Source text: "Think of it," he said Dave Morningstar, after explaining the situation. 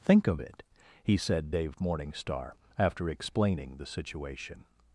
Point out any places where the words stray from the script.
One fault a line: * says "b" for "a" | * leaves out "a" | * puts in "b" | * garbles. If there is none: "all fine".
all fine